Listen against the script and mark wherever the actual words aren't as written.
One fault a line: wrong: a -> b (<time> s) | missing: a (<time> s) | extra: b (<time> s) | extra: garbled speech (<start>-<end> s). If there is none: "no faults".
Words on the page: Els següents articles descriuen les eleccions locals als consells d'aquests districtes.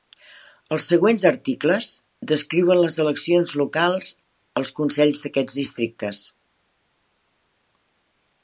no faults